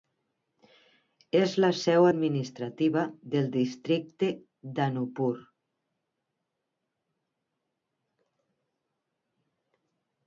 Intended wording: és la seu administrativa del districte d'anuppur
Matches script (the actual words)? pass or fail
pass